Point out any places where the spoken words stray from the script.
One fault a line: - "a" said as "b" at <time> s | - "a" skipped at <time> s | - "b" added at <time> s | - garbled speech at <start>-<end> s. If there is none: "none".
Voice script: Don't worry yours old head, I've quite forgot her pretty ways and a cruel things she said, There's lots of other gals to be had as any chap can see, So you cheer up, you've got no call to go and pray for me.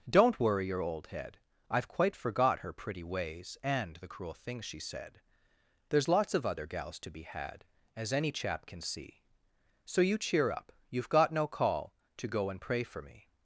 - "yours" said as "your" at 0.7 s
- "a" said as "the" at 4.0 s